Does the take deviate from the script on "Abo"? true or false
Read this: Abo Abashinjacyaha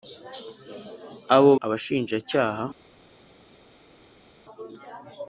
false